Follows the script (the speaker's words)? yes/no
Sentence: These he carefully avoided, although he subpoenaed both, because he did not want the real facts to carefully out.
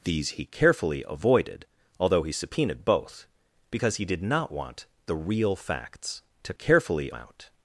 yes